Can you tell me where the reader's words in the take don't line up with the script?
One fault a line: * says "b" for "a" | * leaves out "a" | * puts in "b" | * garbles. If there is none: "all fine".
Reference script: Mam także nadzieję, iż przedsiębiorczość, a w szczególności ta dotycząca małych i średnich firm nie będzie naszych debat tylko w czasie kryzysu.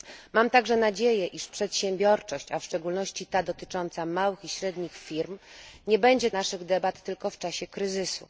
all fine